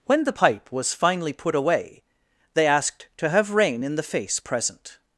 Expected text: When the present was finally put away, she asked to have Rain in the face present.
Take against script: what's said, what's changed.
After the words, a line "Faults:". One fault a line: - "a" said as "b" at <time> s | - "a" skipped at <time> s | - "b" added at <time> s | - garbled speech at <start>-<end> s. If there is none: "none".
When the pipe was finally put away, they asked to have Rain in the face present.
Faults:
- "present" said as "pipe" at 0.3 s
- "she" said as "they" at 2.5 s